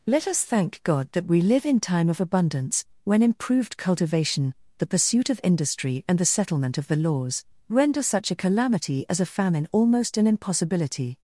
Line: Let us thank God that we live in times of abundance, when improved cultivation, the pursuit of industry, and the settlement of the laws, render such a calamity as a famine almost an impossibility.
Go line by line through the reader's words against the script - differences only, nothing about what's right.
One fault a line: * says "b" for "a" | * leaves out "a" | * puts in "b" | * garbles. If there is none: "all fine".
* says "time" for "times"